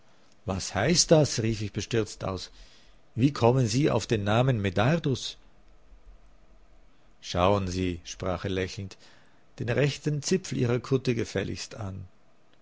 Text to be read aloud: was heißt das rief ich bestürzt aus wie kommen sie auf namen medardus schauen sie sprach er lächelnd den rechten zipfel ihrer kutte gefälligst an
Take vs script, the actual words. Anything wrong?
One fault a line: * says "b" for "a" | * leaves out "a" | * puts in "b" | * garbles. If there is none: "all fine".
* puts in "den"